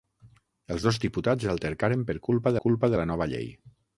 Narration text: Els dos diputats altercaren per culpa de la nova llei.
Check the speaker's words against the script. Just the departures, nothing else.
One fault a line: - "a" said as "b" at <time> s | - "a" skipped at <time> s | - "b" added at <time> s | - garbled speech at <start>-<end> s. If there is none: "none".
- "culpa" added at 2.7 s